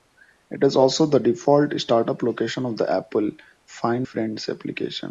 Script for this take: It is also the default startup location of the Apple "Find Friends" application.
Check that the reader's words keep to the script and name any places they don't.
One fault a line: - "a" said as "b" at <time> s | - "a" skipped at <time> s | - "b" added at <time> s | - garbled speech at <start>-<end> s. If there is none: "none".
none